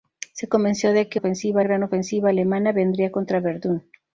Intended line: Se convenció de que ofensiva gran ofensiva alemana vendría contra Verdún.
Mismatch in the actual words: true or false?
false